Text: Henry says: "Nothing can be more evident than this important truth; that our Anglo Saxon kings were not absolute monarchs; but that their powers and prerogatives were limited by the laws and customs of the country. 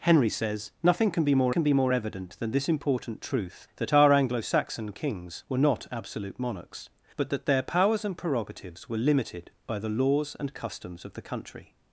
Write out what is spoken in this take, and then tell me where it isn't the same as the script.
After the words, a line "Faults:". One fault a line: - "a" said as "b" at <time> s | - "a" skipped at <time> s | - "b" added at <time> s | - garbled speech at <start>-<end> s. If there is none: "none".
Henry says: "Nothing can be more can be more evident than this important truth; that our Anglo Saxon kings were not absolute monarchs; but that their powers and prerogatives were limited by the laws and customs of the country.
Faults:
- "can be more" added at 1.5 s